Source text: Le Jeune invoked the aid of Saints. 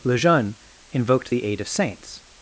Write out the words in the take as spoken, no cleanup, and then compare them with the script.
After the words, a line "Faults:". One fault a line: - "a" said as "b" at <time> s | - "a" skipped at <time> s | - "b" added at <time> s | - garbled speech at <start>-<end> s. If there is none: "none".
Le Jeune invoked the aid of Saints.
Faults:
none